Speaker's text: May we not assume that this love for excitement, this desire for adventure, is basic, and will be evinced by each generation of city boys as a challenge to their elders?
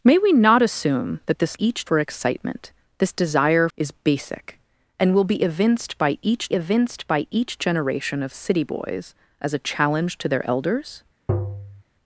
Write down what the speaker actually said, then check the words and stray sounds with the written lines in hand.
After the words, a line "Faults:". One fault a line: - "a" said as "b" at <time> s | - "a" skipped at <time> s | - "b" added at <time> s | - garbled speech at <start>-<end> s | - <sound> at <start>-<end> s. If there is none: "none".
May we not assume that this each for excitement, this desire is basic, and will be evinced by each evinced by each generation of city boys as a challenge to their elders?
Faults:
- "love" said as "each" at 1.6 s
- "for adventure" skipped at 3.7 s
- "evinced by each" added at 6.5 s
- tap at 11.3-11.8 s